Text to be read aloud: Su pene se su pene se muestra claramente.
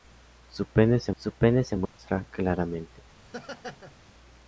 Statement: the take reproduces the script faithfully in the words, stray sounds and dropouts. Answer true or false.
false